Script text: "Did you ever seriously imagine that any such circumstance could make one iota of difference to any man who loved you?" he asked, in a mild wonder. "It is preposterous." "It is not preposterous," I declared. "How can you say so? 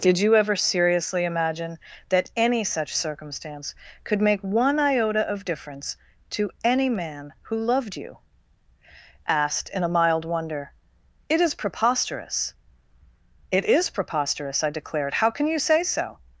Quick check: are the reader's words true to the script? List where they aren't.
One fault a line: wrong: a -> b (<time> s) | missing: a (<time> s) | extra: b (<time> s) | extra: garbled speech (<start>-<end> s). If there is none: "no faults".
missing: he (8.2 s)
missing: not (13.9 s)